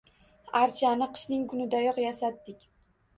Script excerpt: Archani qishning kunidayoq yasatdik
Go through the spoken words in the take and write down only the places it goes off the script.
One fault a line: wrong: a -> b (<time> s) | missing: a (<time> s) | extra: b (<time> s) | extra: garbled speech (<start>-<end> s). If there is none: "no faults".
no faults